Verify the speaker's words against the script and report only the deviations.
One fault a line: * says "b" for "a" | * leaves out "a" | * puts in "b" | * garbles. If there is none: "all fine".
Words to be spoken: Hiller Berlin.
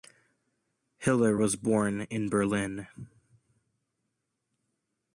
* puts in "was born in"